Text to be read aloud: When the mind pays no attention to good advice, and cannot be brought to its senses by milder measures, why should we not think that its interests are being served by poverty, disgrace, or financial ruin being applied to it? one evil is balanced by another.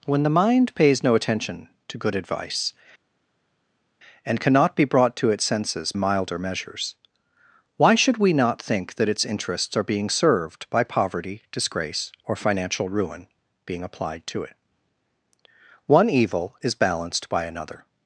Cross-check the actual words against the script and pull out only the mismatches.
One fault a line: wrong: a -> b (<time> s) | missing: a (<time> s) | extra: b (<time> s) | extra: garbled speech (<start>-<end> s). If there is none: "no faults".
missing: by (5.9 s)